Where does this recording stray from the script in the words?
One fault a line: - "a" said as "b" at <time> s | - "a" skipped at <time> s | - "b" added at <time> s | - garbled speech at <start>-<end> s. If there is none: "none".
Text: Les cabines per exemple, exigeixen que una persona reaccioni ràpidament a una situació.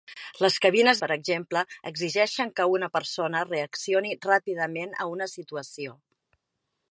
none